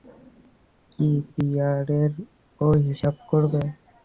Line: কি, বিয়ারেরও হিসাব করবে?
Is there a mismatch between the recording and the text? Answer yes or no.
no